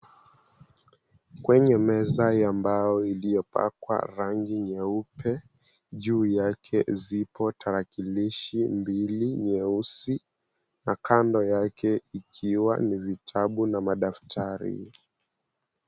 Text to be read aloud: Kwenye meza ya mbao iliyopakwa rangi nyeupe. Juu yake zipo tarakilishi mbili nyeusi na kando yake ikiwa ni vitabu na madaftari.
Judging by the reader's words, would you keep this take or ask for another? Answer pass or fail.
pass